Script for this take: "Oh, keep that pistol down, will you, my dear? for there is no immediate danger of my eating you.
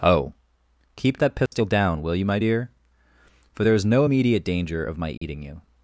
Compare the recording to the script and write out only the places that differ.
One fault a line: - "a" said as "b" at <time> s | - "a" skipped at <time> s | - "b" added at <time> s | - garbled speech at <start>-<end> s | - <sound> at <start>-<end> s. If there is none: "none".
- dropout at 1.5-1.5 s
- dropout at 5.2-5.2 s